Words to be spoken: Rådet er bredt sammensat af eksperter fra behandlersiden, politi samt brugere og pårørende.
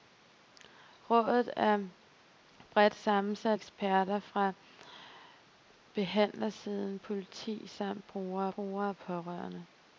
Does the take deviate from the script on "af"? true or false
true